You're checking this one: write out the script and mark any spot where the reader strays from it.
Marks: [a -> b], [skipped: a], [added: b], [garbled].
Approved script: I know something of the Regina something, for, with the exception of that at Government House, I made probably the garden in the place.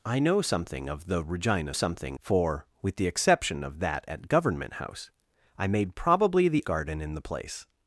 I know something of the Regina something, for, with the exception of that at Government House, I made probably the garden in the place.